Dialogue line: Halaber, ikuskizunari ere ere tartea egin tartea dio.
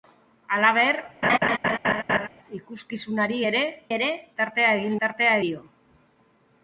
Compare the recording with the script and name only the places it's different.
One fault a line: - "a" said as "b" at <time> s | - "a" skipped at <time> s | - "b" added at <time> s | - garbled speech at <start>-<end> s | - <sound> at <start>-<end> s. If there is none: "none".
- laugh at 1.2-2.3 s